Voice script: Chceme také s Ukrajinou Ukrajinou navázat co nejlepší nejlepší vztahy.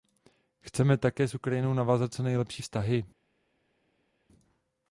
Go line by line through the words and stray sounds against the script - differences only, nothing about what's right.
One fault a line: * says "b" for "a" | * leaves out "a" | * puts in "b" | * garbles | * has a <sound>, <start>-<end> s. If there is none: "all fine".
* leaves out "Ukrajinou"
* leaves out "nejlepší"